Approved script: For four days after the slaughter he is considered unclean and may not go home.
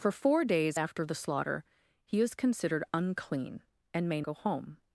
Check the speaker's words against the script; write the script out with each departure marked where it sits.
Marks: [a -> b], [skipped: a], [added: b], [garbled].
For four days after the slaughter he is considered unclean and may [skipped: not] go home.